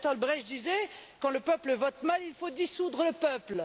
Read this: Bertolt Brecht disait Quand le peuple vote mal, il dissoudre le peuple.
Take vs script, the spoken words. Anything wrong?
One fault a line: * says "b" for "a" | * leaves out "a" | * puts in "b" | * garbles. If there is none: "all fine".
* puts in "faut"